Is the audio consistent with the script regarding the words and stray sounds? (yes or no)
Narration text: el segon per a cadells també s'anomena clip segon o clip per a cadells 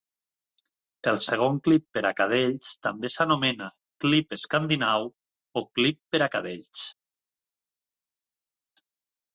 no